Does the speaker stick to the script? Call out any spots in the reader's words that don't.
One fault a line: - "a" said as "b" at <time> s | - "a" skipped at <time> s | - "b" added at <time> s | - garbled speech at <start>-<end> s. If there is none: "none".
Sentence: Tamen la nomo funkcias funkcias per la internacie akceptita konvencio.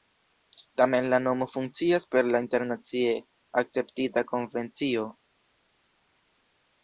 - "funkcias" skipped at 2.1 s